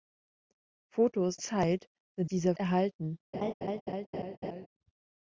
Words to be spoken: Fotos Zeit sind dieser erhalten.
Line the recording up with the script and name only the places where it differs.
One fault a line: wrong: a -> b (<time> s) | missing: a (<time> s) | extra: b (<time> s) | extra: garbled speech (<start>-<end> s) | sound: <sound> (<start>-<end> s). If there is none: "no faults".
sound: laugh (3.3-4.7 s)